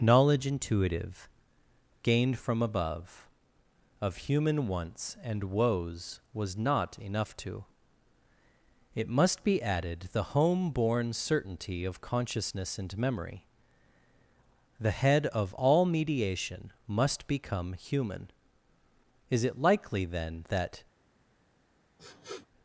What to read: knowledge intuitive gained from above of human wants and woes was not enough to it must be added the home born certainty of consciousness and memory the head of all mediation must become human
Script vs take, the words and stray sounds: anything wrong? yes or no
yes